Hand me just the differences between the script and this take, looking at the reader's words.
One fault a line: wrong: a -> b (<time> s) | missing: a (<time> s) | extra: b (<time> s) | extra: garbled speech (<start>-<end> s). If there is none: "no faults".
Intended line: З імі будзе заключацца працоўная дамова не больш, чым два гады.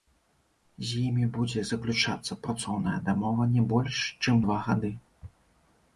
no faults